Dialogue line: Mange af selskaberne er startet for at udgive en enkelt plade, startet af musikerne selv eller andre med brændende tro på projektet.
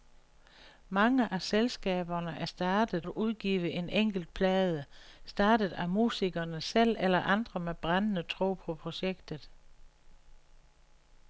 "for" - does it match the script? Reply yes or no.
no